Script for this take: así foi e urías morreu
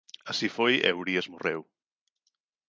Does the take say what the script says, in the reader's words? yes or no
yes